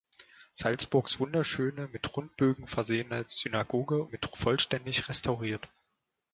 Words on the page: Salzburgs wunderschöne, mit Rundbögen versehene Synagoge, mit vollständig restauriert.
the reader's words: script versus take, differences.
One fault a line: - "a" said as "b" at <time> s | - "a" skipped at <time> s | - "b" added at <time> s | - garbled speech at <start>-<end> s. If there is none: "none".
none